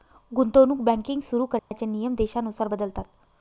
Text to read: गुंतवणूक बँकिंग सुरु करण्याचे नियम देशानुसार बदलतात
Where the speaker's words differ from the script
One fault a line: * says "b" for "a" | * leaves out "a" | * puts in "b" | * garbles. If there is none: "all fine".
all fine